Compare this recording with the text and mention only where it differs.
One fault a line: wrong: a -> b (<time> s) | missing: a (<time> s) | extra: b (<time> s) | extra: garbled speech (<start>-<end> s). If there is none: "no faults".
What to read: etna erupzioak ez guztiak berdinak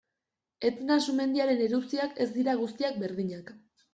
extra: sumendiaren (1.1 s)
extra: dira (2.4 s)